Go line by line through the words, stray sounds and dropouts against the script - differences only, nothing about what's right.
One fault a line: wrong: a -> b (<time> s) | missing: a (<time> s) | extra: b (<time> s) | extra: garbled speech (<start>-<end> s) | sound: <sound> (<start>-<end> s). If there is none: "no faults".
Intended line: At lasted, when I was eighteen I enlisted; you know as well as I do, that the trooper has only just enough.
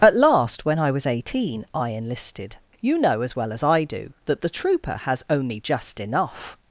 wrong: lasted -> last (0.2 s)